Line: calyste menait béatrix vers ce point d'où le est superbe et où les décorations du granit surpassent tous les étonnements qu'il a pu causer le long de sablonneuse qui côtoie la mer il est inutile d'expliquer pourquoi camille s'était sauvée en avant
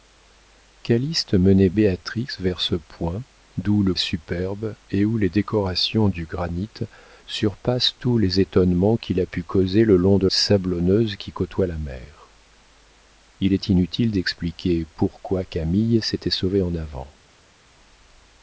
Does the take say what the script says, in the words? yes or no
yes